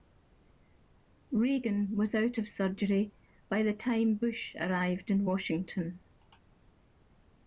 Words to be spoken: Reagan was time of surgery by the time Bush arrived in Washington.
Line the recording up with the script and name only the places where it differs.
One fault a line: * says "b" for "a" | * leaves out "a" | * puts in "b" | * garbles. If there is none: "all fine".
* says "out" for "time"